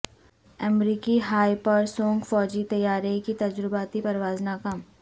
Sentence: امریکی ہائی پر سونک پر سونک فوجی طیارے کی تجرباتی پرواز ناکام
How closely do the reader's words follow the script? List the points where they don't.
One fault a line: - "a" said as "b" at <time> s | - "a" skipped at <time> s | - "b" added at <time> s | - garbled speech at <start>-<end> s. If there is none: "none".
- "پر سونک" skipped at 2.3 s